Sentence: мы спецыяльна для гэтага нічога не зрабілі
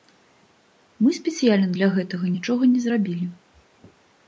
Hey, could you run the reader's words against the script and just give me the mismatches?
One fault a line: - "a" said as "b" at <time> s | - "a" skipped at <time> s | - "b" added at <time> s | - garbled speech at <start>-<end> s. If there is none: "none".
none